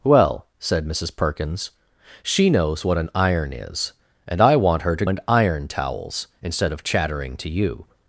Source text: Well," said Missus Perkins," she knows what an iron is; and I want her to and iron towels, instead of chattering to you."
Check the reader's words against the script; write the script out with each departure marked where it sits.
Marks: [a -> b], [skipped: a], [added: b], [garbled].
Well," said Missus Perkins," she knows what an iron is; and I want her to and iron towels, instead of chattering to you."